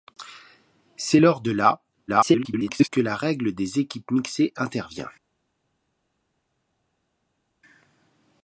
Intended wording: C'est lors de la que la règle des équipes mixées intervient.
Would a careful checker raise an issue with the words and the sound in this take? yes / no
yes